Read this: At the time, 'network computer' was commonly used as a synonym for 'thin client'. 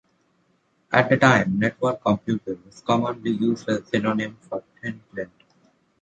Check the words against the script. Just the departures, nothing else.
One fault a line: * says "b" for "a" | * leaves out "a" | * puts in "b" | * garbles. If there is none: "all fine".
all fine